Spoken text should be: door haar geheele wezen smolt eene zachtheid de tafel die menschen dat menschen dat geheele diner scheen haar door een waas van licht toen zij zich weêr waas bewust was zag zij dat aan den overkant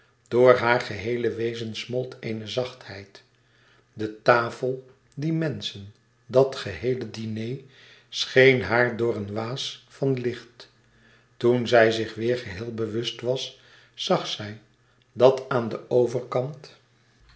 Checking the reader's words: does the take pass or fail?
fail